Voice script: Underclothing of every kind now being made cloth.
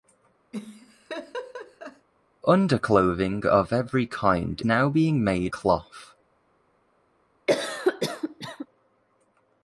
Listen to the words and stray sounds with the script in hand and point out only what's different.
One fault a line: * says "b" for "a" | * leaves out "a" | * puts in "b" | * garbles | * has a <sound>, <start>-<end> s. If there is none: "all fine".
* has a laugh, 0.5-2.1 s
* has a cough, 7.5-8.7 s